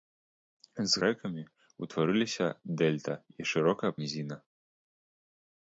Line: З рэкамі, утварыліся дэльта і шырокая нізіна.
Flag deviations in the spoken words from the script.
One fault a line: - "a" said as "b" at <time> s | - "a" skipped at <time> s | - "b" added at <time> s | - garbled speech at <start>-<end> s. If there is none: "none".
none